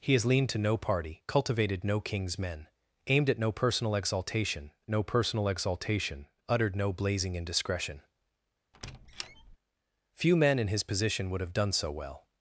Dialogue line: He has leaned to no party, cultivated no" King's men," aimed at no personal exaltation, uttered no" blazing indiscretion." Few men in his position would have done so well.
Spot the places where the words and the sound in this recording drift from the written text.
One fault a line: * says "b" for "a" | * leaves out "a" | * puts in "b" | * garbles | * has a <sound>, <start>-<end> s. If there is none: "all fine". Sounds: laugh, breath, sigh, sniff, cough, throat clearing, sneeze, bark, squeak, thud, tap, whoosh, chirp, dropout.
* puts in "no personal exaltation"
* has a squeak, 8.7-9.6 s